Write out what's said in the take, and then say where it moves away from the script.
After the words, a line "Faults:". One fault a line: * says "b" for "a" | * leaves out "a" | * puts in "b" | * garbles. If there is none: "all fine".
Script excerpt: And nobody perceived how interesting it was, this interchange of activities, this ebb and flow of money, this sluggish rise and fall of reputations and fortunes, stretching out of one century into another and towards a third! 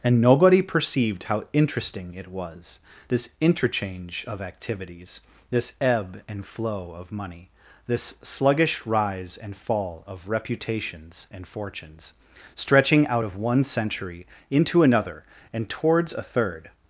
And nobody perceived how interesting it was, this interchange of activities, this ebb and flow of money, this sluggish rise and fall of reputations and fortunes, stretching out of one century into another and towards a third!
Faults:
all fine